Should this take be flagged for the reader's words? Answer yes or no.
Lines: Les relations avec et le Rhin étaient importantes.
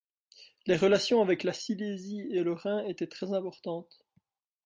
yes